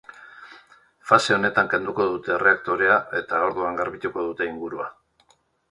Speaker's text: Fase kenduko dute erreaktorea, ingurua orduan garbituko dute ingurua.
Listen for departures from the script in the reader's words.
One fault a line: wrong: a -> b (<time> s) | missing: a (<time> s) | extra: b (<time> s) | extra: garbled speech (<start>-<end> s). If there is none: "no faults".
extra: honetan (1.4 s)
wrong: ingurua -> eta (3.2 s)